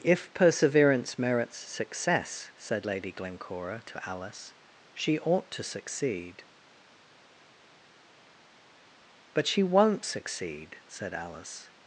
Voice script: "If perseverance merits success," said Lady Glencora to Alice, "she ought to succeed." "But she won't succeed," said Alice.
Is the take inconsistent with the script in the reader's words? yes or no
no